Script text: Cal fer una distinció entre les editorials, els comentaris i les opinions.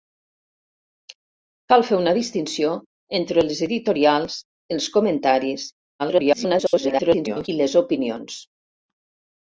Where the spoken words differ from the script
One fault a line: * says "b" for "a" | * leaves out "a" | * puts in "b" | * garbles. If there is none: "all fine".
* garbles